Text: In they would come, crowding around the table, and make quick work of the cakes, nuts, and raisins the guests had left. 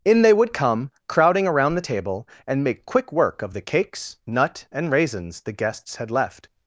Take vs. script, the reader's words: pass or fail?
fail